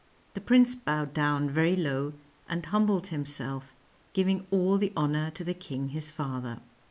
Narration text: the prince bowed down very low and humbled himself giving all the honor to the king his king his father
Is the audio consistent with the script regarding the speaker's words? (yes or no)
no